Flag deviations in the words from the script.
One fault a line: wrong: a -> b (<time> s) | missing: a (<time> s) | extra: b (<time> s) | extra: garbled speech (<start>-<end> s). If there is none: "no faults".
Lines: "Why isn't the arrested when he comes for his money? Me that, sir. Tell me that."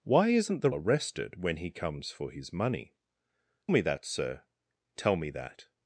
no faults